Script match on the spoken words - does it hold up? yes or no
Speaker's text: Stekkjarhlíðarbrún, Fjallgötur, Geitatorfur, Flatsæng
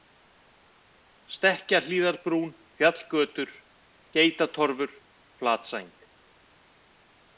yes